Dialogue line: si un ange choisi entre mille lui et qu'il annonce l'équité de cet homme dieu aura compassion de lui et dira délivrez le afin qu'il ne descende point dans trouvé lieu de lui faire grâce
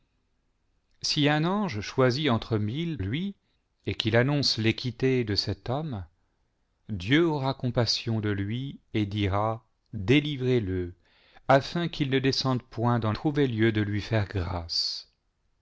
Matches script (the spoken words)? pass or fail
pass